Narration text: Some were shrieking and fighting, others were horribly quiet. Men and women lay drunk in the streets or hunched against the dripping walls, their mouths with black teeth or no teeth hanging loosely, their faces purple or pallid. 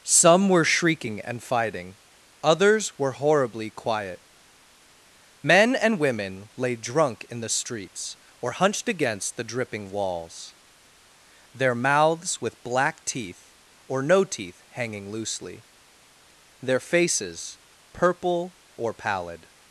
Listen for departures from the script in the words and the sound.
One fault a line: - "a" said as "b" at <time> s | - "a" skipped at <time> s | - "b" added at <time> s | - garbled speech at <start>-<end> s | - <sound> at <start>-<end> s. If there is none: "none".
none